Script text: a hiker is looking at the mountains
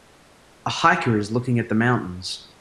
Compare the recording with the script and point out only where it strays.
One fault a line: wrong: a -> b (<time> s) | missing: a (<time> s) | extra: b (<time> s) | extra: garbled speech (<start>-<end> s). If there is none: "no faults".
no faults